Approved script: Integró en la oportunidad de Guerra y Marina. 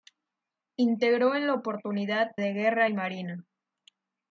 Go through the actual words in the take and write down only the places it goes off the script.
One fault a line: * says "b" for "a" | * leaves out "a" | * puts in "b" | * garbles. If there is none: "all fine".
all fine